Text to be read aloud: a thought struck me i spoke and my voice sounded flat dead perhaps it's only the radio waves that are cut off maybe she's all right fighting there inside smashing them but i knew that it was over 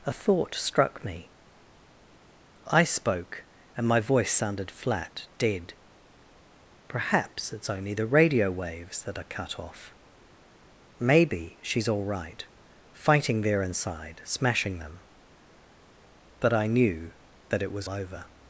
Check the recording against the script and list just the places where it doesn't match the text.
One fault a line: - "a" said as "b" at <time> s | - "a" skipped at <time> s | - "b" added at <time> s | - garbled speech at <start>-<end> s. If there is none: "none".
none